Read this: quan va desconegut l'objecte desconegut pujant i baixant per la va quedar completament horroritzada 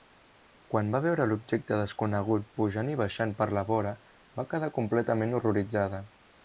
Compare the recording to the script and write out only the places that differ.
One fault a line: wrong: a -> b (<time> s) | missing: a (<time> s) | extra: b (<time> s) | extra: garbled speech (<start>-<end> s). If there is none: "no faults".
wrong: desconegut -> veure (1.1 s)
extra: vora (3.7 s)